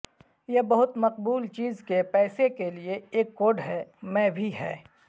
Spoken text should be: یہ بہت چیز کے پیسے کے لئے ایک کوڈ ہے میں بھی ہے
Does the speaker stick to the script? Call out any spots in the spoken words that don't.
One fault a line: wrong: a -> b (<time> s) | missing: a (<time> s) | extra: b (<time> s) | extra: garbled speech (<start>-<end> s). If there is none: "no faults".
extra: مقبول (1.0 s)